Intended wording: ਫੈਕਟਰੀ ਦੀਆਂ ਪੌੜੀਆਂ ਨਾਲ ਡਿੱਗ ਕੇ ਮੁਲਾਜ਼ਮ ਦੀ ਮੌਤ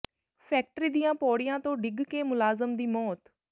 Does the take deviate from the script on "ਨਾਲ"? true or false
true